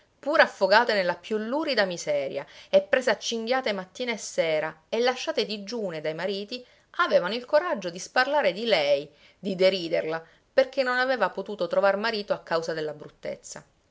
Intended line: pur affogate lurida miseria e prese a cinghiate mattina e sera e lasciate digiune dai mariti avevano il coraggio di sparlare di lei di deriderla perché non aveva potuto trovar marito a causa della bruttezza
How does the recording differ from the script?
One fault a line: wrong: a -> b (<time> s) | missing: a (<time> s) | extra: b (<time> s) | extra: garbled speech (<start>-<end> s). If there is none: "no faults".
extra: nella più (0.9 s)